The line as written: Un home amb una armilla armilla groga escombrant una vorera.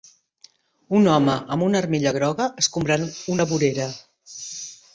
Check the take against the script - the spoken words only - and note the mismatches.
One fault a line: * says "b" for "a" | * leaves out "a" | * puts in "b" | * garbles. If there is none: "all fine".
* leaves out "armilla"